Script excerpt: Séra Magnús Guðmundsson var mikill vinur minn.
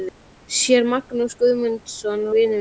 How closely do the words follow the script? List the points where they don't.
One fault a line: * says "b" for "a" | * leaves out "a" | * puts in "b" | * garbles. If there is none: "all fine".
* leaves out "var mikill"